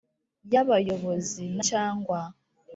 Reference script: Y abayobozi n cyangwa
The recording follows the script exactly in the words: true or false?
true